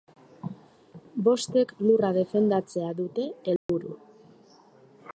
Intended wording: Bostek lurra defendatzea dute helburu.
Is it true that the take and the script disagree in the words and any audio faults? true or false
true